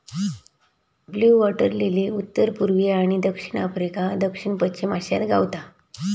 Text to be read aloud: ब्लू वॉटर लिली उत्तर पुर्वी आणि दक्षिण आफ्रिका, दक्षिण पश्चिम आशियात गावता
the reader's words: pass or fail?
pass